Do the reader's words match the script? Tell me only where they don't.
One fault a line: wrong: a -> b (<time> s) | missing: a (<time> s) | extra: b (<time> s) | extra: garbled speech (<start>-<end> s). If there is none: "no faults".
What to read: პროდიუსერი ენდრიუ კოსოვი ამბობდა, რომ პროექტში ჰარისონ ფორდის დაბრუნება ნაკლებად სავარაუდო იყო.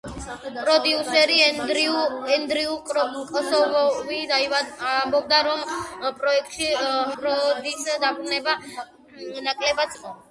missing: ჰარისონ (6.7 s)
missing: სავარაუდო (10.0 s)